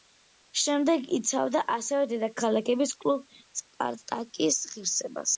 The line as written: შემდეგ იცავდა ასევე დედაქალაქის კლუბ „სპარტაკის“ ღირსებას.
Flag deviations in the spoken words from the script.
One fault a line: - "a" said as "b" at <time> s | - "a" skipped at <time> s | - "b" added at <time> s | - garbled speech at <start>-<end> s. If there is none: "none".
none